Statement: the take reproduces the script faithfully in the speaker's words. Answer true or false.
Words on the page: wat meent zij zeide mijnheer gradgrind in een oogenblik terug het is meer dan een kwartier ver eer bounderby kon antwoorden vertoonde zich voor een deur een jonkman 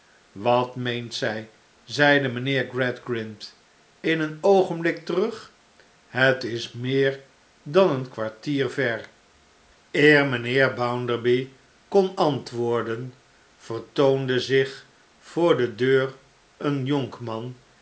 false